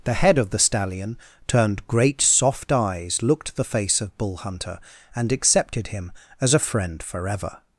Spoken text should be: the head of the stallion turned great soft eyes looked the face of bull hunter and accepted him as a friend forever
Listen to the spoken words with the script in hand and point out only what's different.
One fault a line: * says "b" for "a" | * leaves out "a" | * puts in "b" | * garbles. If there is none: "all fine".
all fine